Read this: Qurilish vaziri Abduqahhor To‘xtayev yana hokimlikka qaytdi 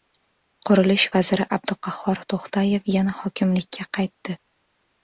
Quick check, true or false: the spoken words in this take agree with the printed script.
true